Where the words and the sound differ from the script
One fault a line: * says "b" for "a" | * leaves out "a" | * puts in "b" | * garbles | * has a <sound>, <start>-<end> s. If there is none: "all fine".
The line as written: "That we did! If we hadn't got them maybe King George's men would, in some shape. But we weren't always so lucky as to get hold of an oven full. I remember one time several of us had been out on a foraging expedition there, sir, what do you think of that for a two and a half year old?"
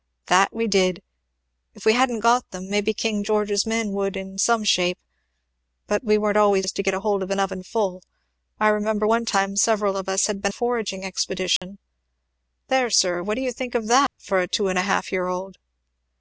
* leaves out "so lucky"
* leaves out "out on"
* has a dropout, 11.6-11.6 s
* has a dropout, 14.1-14.2 s